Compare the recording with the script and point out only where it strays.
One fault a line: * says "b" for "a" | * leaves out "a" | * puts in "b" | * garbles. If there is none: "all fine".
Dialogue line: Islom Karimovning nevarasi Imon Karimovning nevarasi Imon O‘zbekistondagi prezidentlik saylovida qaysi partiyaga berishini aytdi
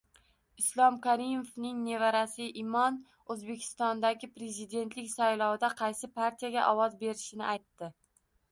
* leaves out "Karimovning nevarasi Imon"
* puts in "ovoz"